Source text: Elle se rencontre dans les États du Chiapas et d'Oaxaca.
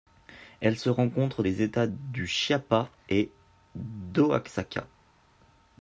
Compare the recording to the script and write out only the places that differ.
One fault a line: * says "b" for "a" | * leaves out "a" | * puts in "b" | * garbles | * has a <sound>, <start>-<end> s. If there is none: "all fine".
* leaves out "dans"